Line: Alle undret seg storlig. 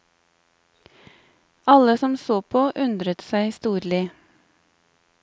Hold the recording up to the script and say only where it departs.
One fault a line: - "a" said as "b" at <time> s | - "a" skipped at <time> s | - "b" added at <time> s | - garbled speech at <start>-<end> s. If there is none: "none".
- "som så på" added at 1.9 s